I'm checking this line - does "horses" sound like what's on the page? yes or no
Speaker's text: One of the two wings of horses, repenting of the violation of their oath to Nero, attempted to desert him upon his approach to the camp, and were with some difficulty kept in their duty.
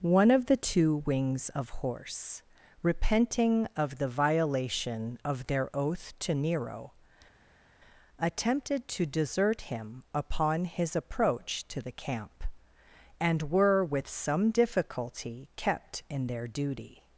no